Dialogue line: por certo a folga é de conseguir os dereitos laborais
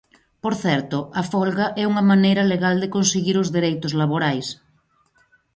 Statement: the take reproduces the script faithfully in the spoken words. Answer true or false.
false